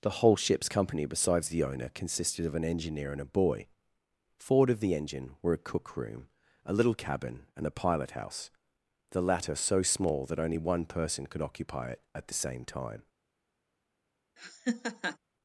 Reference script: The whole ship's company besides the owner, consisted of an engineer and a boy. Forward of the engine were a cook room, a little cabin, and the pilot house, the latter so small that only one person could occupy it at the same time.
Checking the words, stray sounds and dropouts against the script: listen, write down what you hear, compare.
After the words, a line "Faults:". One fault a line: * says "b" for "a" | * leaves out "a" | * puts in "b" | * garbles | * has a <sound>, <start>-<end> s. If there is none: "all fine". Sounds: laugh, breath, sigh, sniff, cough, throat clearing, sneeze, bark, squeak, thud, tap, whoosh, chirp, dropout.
The whole ship's company besides the owner, consisted of an engineer and a boy. Forward of the engine were a cook room, a little cabin, and a pilot house, the latter so small that only one person could occupy it at the same time.
Faults:
* says "a" for "the"
* has a laugh, 14.4-15.2 s